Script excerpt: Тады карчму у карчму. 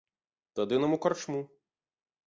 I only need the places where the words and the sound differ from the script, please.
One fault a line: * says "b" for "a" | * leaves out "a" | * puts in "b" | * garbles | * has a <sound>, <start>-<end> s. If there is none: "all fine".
* says "нам" for "карчму"